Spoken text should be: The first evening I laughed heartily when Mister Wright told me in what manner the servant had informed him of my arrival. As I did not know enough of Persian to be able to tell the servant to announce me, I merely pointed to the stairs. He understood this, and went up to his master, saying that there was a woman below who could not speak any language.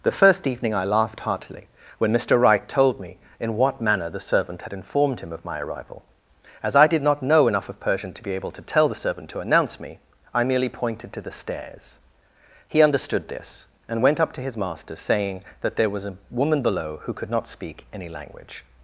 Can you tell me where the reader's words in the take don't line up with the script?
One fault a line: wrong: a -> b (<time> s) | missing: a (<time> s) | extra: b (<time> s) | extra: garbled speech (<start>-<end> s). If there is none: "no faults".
no faults